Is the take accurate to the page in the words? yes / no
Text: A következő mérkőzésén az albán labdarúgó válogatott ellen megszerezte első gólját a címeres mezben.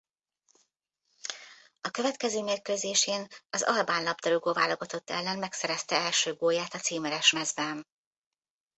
yes